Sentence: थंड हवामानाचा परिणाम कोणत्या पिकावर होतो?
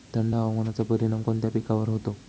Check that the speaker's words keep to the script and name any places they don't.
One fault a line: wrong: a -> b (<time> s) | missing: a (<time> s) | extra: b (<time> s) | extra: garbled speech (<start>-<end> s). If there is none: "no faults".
no faults